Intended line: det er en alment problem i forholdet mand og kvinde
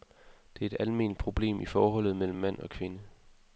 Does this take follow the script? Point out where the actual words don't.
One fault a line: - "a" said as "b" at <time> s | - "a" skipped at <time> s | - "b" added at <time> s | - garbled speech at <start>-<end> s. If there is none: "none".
- "en" said as "et" at 0.7 s
- "mellem" added at 2.1 s